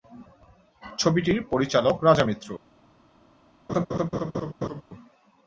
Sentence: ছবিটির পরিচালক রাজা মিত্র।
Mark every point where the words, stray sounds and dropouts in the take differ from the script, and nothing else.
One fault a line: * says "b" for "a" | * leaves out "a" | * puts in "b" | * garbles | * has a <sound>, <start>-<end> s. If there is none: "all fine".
* has a laugh, 3.7-4.8 s